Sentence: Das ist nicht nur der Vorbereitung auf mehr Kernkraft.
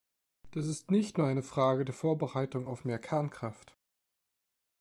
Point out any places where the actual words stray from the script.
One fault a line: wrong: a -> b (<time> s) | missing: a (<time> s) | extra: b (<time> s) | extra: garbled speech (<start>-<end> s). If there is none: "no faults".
extra: eine Frage (1.3 s)